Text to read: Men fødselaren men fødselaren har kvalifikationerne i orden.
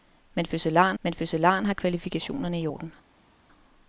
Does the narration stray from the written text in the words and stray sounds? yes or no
no